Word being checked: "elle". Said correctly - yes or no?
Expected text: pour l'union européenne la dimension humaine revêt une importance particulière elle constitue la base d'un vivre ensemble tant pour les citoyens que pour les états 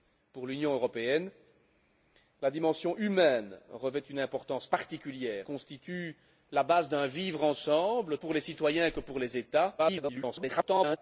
no